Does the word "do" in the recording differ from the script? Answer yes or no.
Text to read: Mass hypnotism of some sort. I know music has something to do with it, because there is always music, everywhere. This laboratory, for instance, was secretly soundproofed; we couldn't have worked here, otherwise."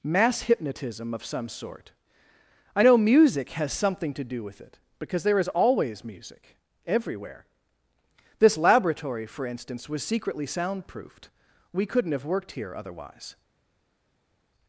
no